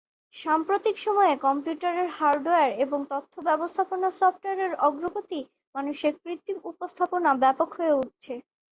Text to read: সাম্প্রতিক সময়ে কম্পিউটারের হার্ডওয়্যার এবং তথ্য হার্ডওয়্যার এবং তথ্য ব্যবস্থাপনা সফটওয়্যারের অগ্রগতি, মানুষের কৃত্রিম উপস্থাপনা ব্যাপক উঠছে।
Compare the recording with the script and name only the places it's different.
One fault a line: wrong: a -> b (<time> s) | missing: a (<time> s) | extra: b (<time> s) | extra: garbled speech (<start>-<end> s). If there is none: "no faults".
missing: হার্ডওয়্যার এবং তথ্য (3.3 s)
extra: হয়ে (7.8 s)